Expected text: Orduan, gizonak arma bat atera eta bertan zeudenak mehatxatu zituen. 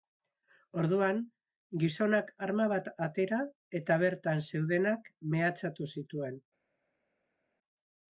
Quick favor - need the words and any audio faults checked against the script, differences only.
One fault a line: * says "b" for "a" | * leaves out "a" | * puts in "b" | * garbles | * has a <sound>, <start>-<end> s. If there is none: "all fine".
all fine